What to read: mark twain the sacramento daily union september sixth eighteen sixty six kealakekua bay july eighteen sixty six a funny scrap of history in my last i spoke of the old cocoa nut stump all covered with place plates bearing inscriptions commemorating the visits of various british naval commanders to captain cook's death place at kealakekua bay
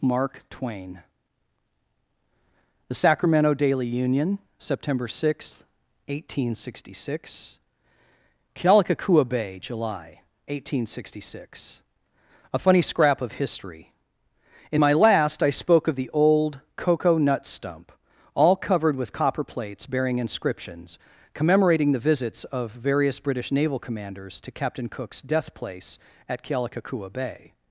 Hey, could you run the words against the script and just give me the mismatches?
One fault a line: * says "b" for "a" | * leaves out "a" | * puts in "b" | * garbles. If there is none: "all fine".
* says "copper" for "place"